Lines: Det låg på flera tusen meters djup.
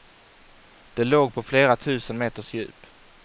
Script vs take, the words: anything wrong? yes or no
no